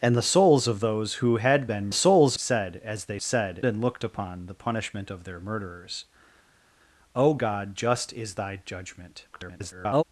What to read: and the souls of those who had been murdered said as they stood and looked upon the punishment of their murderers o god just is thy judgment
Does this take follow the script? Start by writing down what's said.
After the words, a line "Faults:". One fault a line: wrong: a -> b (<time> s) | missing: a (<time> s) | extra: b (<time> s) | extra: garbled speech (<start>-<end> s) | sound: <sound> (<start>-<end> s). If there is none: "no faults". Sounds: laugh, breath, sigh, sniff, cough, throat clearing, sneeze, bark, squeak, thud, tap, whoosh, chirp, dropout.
and the souls of those who had been souls said as they said and looked upon the punishment of their murderers o god just is thy judgment [garbled]
Faults:
wrong: murdered -> souls (1.9 s)
wrong: stood -> said (3.2 s)
extra: garbled speech (9.3-10.0 s)